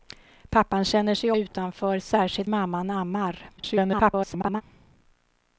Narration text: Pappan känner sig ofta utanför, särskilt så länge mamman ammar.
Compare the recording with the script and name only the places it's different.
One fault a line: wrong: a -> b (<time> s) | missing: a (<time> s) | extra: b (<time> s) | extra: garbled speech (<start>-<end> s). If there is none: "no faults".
missing: ofta (1.3 s)
missing: så länge (2.5 s)
extra: garbled speech (3.6-4.6 s)